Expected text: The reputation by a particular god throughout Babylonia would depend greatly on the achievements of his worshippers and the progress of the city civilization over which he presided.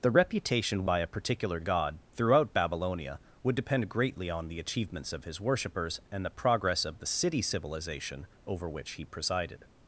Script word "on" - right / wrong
right